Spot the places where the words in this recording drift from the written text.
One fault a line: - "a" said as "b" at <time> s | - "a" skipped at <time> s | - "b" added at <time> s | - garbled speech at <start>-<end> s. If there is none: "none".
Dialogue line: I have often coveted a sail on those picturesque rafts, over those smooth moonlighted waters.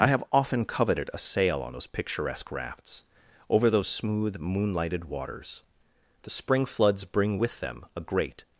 - "The spring floods bring with them a great" added at 6.2 s